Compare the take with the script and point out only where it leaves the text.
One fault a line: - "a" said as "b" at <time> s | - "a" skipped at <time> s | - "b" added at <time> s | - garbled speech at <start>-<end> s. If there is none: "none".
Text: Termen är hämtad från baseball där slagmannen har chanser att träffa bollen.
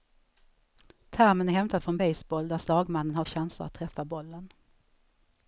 none